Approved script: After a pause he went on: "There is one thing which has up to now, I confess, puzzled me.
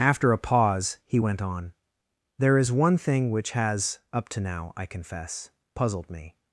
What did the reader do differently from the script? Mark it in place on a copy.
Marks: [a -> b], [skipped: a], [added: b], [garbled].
After a pause he went on: "There is one thing which has up to now, I confess, puzzled me.